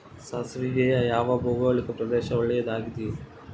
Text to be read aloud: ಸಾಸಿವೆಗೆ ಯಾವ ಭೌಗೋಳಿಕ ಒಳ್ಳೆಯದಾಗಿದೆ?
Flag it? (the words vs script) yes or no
yes